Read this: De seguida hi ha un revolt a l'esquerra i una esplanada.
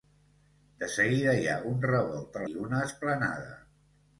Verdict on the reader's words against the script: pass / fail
fail